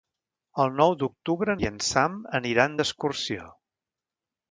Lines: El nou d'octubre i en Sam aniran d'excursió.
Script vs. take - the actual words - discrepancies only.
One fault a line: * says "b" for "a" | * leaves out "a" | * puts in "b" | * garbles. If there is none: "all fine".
all fine